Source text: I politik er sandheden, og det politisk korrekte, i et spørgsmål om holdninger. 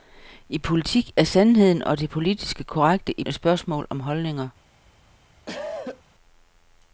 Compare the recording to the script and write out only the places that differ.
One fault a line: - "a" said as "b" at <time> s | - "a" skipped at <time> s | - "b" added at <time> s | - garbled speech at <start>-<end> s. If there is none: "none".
none